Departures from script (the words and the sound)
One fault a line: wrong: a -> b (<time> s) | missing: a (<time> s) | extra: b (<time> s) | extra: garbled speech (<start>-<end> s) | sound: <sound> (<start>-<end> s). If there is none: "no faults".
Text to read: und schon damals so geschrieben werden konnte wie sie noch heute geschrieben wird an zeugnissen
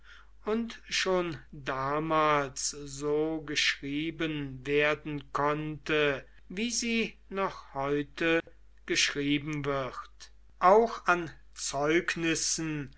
sound: dropout (8.4-8.5 s)
extra: auch (10.6 s)